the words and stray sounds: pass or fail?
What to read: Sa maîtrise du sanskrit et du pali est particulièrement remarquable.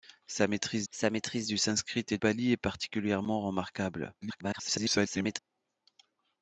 fail